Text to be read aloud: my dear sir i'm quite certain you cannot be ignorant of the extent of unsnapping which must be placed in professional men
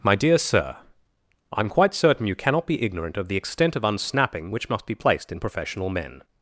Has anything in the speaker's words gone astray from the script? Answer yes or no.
no